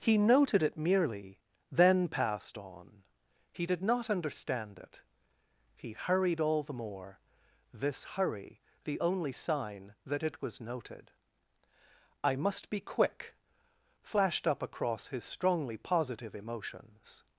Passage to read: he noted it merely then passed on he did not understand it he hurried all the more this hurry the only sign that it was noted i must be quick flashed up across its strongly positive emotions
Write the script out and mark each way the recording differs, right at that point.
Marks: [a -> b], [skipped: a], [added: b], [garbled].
he noted it merely then passed on he did not understand it he hurried all the more this hurry the only sign that it was noted i must be quick flashed up across [its -> his] strongly positive emotions